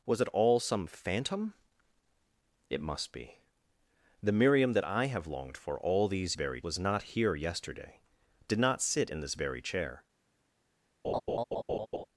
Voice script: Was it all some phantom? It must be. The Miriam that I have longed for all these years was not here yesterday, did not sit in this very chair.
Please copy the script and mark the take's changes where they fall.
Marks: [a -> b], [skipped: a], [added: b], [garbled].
Was it all some phantom? It must be. The Miriam that I have longed for all these [years -> very] was not here yesterday, did not sit in this very chair.